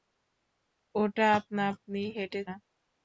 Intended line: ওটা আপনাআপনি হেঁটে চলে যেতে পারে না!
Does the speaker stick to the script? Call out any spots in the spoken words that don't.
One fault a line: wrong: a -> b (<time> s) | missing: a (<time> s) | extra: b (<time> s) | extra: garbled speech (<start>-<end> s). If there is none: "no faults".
missing: চলে যেতে পারে (2.4 s)